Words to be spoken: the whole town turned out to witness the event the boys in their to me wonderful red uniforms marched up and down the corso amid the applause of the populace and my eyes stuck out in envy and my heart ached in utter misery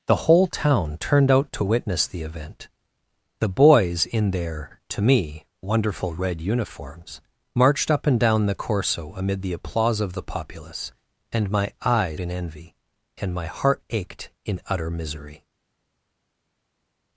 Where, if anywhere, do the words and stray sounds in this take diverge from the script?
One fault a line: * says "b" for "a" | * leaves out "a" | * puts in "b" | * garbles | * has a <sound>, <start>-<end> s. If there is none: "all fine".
* leaves out "stuck out"